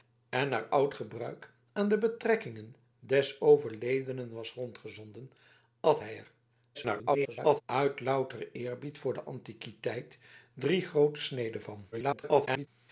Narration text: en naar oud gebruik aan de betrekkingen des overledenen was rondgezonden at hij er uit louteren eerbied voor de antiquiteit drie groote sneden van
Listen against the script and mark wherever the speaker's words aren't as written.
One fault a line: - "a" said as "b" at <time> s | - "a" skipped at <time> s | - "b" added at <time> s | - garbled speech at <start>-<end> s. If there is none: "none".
- garbled speech at 6.7-7.6 s
- garbled speech at 11.9-12.7 s